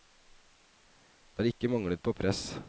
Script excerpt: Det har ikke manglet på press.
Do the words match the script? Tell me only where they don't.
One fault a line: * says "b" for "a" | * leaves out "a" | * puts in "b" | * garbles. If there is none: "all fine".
all fine